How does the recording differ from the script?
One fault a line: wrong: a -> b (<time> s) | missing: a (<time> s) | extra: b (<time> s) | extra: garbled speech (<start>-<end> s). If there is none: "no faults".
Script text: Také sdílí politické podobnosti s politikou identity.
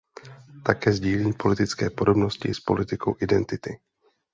no faults